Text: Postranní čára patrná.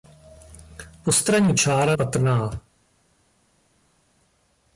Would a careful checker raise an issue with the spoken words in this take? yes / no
no